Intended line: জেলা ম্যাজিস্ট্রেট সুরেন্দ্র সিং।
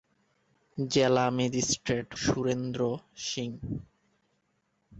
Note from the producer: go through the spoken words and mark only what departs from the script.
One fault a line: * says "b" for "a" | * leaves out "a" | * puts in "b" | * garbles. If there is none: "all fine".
all fine